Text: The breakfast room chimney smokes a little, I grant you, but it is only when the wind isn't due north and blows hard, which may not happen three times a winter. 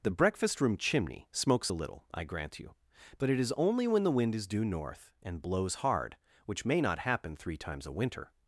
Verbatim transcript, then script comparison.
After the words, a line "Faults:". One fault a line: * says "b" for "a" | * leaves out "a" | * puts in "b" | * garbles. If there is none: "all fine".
The breakfast room chimney smokes a little, I grant you, but it is only when the wind is due north and blows hard, which may not happen three times a winter.
Faults:
* says "is" for "isn't"